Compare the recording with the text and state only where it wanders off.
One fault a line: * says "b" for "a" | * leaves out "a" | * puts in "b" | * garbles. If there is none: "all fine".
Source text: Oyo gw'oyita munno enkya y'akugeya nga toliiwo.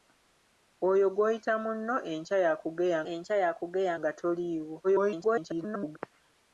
* puts in "enkya y'akugeya"
* garbles